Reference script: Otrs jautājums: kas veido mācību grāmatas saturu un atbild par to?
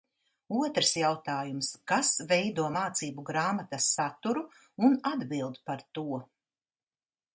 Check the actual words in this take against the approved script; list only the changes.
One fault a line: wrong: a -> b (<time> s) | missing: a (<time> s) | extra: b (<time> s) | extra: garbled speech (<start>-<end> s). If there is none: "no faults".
no faults